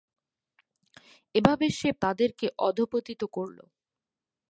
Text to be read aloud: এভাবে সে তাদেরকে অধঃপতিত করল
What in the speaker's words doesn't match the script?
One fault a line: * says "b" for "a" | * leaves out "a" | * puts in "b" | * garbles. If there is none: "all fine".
all fine